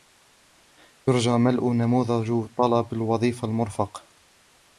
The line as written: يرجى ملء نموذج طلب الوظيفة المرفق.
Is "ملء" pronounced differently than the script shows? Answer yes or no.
no